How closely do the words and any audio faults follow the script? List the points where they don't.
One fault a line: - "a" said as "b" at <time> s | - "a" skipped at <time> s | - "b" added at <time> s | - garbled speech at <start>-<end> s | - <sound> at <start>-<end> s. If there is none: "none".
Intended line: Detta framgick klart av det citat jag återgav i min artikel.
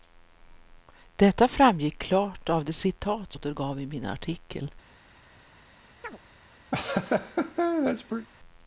- "jag" skipped at 3.4 s
- chirp at 6.0-6.2 s
- laugh at 6.7-8.3 s